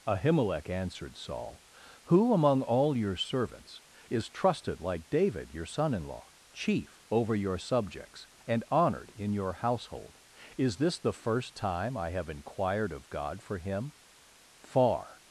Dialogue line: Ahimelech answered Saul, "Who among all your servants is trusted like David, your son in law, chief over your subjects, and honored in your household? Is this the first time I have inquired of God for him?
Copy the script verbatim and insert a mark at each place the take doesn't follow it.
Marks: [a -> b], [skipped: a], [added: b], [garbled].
Ahimelech answered Saul, "Who among all your servants is trusted like David, your son in law, chief over your subjects, and honored in your household? Is this the first time I have inquired of God for him? [added: Far]